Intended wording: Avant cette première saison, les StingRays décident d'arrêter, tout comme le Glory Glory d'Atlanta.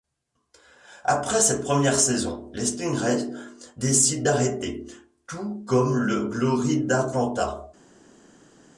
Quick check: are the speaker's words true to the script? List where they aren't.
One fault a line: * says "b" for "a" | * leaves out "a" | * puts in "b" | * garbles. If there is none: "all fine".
* says "Après" for "Avant"
* leaves out "Glory"